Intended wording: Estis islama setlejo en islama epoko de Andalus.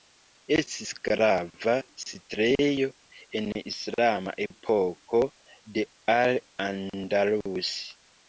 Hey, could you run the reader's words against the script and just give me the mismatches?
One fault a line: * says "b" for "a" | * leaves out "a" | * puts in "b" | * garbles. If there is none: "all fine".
* says "grava" for "islama"
* puts in "Al"